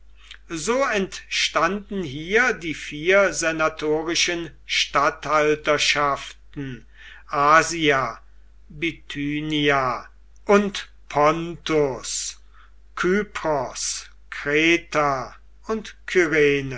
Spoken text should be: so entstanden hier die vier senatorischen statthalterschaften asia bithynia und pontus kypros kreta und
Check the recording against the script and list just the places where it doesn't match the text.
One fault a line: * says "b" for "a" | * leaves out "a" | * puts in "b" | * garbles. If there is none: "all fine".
all fine